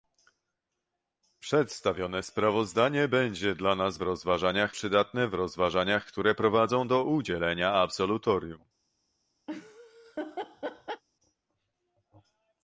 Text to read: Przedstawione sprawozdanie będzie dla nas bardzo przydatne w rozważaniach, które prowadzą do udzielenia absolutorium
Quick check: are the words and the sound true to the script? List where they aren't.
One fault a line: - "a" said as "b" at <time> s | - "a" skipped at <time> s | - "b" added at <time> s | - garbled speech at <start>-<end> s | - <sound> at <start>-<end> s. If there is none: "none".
- "bardzo" said as "rozważaniach" at 4.0 s
- laugh at 9.5-11.0 s